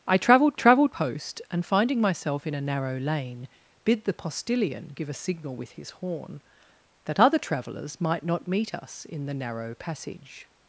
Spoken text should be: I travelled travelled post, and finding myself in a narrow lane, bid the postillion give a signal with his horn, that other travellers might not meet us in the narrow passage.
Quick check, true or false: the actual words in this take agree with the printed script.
true